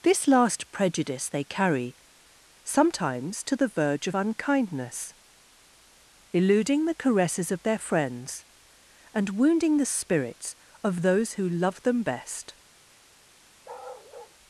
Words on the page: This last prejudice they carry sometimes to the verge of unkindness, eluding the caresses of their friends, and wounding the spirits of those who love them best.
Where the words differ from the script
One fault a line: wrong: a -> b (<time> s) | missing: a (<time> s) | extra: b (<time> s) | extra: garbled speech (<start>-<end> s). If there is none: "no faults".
no faults